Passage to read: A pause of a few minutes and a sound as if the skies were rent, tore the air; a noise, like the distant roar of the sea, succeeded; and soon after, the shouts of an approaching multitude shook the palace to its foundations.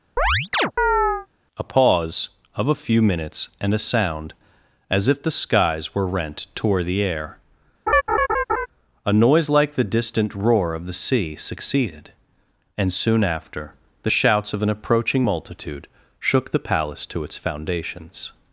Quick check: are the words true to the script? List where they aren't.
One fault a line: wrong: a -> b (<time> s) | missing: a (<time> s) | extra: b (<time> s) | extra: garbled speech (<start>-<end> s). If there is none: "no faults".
no faults